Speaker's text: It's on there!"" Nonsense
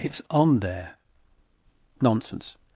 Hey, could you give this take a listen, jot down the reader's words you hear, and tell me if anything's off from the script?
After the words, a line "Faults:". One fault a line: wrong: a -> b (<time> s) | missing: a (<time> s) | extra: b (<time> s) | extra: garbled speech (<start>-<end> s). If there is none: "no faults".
It's on there!"" Nonsense
Faults:
no faults